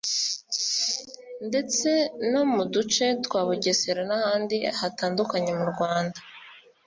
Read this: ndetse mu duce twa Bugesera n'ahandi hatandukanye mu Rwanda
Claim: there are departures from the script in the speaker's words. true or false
true